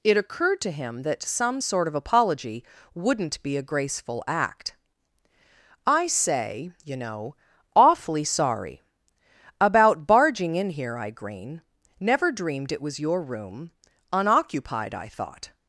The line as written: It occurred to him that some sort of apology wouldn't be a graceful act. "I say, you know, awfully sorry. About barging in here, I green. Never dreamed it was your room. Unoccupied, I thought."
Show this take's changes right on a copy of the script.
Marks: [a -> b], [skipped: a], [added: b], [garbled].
It occurred to him that some sort of apology wouldn't be a graceful act. "I say, you know, awfully sorry. About barging in here, I green. Never dreamed it was your room. Unoccupied, I thought."